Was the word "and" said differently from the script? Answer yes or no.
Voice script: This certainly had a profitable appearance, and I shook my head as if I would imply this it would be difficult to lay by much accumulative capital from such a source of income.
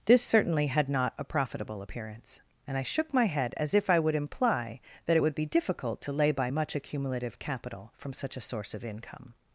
no